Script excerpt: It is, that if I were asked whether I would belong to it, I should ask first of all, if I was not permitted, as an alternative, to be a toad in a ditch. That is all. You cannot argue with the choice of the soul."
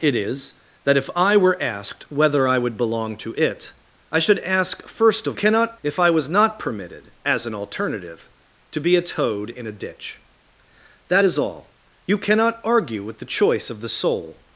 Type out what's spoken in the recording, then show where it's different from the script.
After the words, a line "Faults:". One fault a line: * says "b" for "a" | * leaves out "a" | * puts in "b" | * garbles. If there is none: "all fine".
It is, that if I were asked whether I would belong to it, I should ask first of cannot, if I was not permitted, as an alternative, to be a toad in a ditch. That is all. You cannot argue with the choice of the soul."
Faults:
* says "cannot" for "all"